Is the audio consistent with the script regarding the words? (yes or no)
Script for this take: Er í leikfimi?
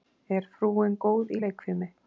no